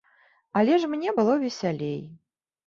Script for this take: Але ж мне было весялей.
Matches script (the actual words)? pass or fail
pass